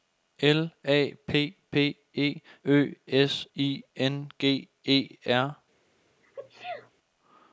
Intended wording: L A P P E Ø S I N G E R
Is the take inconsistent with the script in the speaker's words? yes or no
no